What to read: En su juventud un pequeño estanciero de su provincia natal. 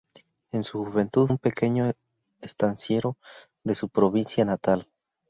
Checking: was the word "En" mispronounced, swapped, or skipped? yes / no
no